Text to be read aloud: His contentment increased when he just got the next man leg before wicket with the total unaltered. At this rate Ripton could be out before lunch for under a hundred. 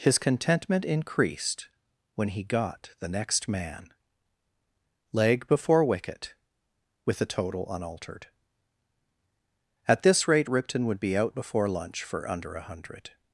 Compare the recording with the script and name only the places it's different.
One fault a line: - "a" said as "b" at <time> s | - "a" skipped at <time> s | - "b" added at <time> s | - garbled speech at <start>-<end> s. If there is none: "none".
- "just" skipped at 2.4 s
- "could" said as "would" at 10.8 s